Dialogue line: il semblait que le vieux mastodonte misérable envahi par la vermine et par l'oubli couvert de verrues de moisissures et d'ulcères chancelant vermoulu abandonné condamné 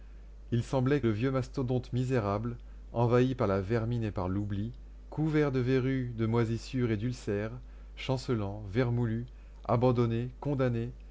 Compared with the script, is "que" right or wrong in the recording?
wrong